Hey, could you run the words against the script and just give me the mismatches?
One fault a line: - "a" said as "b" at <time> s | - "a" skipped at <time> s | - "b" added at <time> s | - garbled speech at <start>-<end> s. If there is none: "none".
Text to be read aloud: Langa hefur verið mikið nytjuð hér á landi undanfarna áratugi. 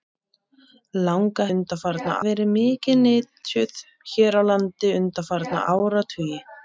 - "hefur" said as "undanfarna" at 1.6 s